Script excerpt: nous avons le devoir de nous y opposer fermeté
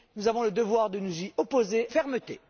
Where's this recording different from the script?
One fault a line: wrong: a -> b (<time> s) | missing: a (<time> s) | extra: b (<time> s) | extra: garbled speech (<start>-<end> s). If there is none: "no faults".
no faults